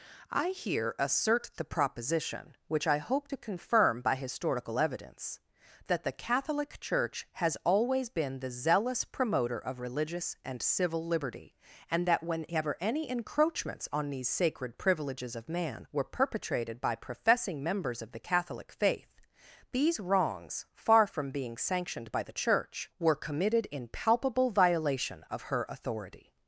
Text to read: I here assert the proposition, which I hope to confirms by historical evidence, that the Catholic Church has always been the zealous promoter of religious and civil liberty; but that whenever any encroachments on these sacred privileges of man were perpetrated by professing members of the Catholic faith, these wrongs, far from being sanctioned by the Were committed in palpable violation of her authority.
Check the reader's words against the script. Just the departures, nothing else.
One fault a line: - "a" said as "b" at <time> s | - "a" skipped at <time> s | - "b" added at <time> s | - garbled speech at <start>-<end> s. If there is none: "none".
- "confirms" said as "confirm" at 3.4 s
- "but" said as "and" at 11.9 s
- "Church" added at 22.3 s